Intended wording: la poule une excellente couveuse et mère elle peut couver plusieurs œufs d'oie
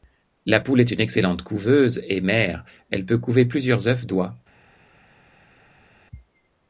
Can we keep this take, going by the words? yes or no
no